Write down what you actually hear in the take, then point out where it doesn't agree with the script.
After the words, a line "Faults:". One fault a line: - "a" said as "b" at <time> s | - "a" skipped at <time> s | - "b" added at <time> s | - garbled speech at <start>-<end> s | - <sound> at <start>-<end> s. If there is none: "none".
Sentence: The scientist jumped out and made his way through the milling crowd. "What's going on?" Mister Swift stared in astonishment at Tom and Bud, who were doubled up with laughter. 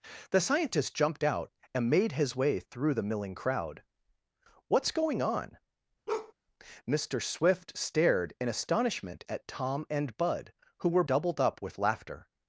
The scientist jumped out and made his way through the milling crowd. "What's going on?" Mister Swift stared in astonishment at Tom and Bud, who were doubled up with laughter.
Faults:
- bark at 6.1-6.3 s